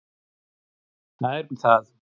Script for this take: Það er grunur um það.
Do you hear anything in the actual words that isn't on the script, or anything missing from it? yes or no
yes